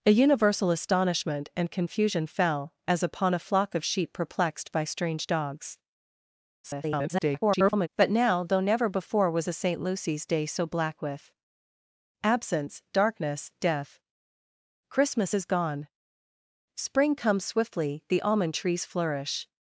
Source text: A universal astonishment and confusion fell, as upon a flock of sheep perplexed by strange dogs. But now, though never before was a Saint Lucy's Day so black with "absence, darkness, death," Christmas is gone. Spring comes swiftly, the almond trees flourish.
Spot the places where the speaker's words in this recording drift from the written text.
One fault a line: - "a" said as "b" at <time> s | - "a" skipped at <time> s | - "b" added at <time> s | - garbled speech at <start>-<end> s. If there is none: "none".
- garbled speech at 6.6-7.9 s